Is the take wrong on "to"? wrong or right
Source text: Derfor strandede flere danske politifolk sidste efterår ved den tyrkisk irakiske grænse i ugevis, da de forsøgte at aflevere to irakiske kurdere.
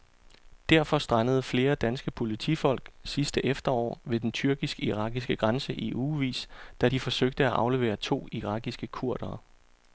right